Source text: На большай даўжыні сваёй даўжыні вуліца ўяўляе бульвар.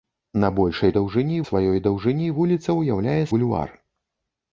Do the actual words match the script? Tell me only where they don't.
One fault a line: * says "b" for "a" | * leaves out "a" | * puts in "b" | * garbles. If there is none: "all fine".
all fine